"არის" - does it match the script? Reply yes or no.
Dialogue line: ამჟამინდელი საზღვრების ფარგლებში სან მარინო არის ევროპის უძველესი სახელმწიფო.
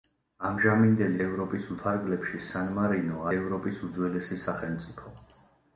no